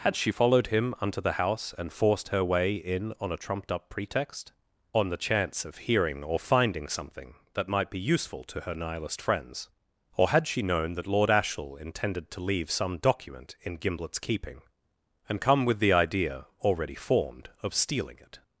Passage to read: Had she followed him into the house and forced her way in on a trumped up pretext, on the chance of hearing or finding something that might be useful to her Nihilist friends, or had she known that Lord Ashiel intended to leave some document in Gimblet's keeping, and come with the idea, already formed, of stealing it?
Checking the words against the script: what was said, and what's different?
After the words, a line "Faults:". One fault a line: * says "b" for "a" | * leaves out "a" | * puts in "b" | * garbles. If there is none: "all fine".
Had she followed him unto the house and forced her way in on a trumped up pretext, on the chance of hearing or finding something that might be useful to her Nihilist friends, or had she known that Lord Ashiel intended to leave some document in Gimblet's keeping, and come with the idea, already formed, of stealing it?
Faults:
* says "unto" for "into"